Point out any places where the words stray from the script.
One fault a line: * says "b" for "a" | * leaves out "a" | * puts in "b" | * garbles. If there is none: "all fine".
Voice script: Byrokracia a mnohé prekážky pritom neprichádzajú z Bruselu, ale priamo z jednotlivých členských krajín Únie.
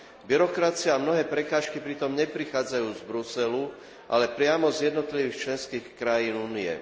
all fine